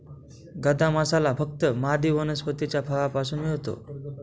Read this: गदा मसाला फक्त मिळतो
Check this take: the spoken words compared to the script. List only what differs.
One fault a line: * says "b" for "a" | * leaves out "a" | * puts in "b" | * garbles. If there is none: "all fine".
* puts in "मादी वनस्पतीच्या फळापासून"